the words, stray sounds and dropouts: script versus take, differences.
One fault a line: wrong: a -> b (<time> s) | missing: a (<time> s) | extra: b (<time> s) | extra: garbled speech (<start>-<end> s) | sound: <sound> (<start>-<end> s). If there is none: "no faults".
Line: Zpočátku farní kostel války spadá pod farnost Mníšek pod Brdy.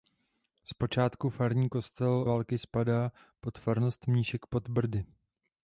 no faults